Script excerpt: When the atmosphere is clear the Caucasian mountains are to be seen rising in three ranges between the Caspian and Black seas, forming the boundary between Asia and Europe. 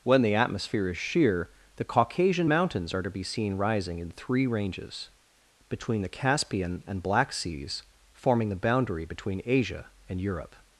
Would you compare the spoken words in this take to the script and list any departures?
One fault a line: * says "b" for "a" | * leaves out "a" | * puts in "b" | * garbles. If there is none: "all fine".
* says "sheer" for "clear"